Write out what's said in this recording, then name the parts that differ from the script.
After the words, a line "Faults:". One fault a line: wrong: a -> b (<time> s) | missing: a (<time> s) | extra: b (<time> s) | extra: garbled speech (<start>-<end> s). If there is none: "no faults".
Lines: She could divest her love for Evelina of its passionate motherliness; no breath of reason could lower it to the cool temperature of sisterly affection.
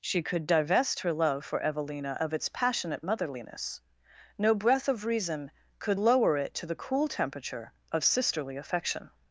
She could divest her love for Evelina of its passionate motherliness; no breath of reason could lower it to the cool temperature of sisterly affection.
Faults:
no faults